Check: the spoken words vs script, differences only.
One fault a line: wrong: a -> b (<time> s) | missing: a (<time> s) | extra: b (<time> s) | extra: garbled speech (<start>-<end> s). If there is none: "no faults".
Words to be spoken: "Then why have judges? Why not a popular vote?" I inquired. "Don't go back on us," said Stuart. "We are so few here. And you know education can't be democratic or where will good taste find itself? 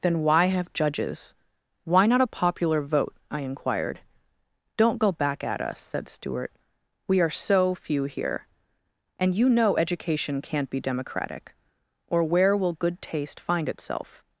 wrong: on -> at (5.4 s)